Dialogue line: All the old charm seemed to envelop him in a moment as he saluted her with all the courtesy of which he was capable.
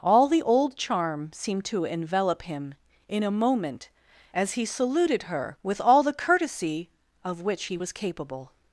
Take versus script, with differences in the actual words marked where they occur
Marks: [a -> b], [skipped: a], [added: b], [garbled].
All the old charm seemed to envelop him in a moment as he saluted her with all the courtesy of which he was capable.